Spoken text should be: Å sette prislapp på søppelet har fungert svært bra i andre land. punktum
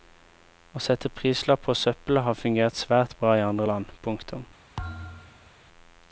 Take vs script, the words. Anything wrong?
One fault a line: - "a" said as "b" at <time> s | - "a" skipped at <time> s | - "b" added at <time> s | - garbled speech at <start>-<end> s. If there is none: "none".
none